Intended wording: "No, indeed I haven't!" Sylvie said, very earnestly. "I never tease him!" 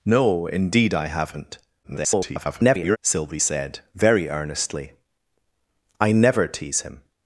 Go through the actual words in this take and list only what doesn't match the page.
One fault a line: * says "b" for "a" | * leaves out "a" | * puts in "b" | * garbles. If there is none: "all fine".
* garbles